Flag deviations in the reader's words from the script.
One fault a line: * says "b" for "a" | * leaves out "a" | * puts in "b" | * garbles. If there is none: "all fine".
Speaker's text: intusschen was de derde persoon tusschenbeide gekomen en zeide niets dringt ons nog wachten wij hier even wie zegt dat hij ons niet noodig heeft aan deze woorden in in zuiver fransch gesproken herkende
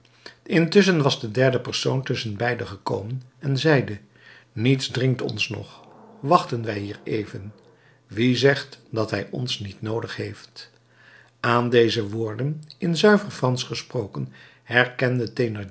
* leaves out "in"